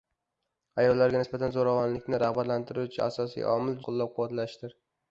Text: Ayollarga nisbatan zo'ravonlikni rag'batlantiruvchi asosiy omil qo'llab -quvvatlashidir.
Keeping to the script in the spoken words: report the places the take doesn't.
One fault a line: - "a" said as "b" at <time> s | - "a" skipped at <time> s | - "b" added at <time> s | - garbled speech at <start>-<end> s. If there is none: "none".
none